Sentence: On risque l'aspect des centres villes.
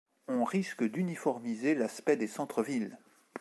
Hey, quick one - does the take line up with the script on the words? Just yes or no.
no